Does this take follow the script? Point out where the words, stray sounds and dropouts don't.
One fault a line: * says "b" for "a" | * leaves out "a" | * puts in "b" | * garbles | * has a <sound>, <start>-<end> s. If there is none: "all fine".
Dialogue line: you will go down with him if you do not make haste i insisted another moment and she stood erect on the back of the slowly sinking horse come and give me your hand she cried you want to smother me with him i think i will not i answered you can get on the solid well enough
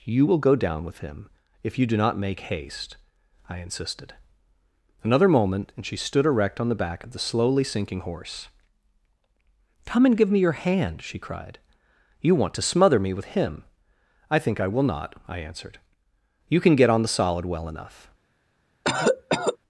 * has a cough, 18.8-19.6 s